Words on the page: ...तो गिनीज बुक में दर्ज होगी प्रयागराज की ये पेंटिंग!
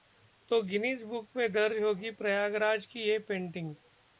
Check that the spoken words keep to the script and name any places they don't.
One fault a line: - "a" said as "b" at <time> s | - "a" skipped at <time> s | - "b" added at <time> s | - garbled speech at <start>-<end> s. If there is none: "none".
none